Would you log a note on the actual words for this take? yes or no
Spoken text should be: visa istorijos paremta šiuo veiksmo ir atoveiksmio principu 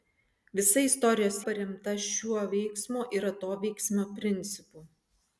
no